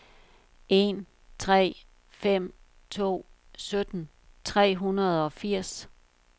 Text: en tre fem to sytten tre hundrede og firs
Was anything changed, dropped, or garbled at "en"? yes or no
no